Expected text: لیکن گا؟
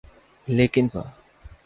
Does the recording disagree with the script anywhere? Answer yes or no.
no